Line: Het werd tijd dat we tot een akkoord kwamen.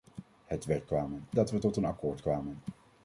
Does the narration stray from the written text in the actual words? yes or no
yes